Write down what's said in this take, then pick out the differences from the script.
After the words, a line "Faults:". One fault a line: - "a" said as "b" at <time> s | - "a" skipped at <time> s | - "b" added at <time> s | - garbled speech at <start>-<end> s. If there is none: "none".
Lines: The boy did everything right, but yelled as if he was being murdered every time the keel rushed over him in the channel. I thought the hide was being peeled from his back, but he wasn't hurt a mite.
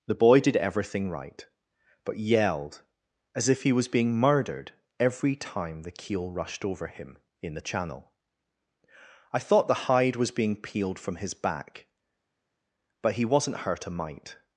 The boy did everything right, but yelled as if he was being murdered every time the keel rushed over him in the channel. I thought the hide was being peeled from his back, but he wasn't hurt a mite.
Faults:
none